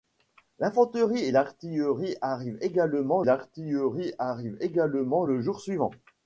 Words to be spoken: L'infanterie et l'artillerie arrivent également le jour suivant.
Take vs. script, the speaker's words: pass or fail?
fail